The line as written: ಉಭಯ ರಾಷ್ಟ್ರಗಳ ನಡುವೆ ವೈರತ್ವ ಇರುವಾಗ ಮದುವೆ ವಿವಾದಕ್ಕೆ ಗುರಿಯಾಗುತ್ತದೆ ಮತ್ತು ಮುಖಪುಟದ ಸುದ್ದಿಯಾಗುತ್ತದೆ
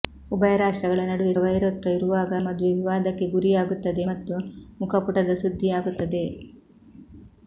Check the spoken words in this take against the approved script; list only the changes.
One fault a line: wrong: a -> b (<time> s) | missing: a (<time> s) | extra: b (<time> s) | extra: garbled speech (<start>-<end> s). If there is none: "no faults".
no faults